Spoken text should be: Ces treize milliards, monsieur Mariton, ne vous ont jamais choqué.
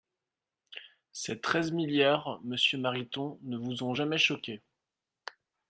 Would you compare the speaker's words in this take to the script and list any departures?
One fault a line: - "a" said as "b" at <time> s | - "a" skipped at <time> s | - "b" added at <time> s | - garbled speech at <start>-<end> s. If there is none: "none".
none